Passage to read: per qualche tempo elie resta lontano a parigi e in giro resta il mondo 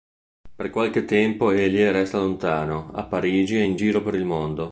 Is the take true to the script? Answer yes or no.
no